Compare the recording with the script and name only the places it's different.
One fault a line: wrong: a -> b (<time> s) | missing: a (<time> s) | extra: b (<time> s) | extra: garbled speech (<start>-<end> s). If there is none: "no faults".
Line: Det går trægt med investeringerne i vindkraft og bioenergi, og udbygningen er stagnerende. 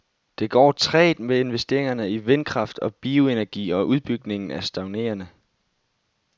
no faults